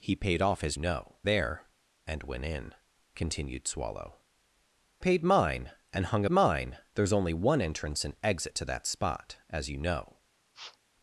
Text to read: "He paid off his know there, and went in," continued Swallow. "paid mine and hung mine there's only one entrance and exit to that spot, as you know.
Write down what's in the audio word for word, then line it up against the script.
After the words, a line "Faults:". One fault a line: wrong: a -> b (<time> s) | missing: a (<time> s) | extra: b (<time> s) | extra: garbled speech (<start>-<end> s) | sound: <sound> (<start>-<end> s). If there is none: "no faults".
"He paid off his know there, and went in," continued Swallow. "paid mine and hung mine there's only one entrance and exit to that spot, as you know.
Faults:
sound: sniff (10.5-10.8 s)